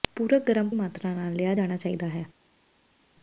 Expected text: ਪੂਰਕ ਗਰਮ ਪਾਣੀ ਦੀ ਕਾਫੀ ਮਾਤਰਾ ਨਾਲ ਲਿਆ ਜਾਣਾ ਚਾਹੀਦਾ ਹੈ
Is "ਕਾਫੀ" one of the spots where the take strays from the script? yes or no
yes